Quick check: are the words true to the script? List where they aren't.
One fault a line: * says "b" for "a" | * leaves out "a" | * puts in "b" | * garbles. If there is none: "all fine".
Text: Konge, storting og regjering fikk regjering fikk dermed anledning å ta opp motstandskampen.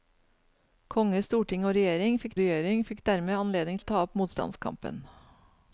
all fine